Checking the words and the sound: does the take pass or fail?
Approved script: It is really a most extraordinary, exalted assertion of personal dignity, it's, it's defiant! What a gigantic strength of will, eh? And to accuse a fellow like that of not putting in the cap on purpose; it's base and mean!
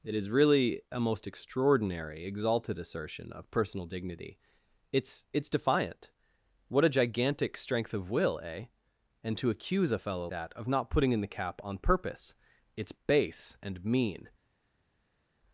fail